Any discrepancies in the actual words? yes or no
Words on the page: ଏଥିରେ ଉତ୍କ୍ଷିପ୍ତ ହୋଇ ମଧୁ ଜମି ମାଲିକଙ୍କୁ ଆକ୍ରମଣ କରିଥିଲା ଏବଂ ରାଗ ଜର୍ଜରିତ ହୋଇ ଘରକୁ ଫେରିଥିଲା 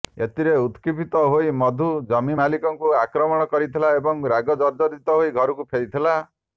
no